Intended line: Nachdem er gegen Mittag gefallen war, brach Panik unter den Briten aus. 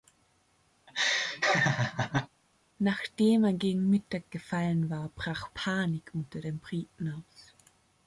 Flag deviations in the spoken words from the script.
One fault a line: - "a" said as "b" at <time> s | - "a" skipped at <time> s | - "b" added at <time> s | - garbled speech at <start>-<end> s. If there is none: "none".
none